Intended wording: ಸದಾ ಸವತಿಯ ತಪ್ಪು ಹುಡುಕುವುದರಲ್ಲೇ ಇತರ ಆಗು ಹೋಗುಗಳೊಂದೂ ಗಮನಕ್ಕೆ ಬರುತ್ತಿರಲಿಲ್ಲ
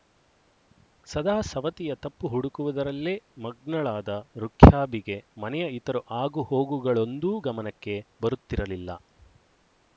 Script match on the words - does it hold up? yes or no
no